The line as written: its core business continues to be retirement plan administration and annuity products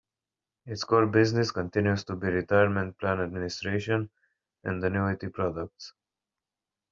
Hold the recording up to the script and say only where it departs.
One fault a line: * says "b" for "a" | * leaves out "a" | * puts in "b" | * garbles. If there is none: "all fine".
all fine